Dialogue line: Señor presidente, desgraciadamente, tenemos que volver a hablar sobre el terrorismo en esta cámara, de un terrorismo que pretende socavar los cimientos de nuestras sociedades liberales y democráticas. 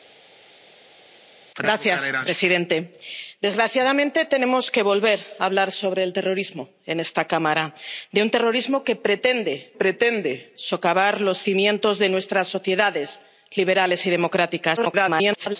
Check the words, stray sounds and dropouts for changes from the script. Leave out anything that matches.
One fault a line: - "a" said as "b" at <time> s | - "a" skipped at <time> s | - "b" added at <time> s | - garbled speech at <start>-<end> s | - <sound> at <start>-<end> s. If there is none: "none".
- "pretende" added at 9.7 s
- garbled speech at 14.8-15.6 s